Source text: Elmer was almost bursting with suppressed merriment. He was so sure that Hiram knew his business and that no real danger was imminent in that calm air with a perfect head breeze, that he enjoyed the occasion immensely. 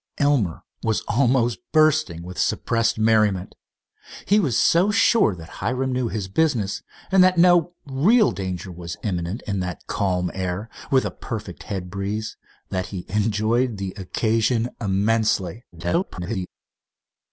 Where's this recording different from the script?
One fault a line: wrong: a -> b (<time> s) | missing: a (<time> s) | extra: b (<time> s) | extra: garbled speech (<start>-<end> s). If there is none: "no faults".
extra: garbled speech (15.7-16.5 s)